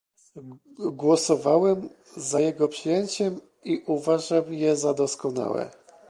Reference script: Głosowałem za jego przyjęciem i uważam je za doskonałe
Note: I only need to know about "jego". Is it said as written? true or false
true